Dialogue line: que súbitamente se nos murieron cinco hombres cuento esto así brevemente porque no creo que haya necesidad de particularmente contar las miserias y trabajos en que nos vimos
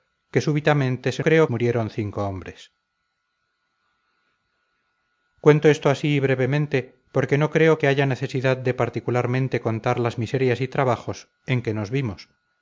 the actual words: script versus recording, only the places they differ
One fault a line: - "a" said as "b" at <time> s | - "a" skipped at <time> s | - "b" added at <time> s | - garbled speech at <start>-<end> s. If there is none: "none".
- "nos" said as "creo" at 1.2 s